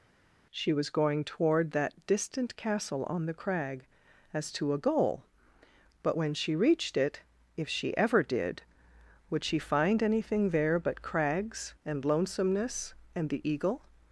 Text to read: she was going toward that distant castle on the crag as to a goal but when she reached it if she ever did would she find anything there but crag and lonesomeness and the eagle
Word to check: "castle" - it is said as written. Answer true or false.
true